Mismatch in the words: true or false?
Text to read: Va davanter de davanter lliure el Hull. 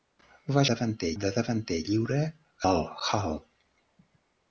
false